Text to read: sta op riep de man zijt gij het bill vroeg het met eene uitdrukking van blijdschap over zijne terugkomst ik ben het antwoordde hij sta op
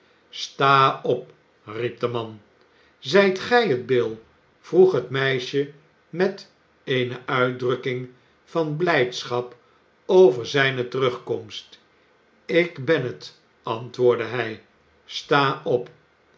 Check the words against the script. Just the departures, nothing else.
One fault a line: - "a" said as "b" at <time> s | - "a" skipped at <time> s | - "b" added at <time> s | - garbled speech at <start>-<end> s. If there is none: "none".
- "meisje" added at 5.1 s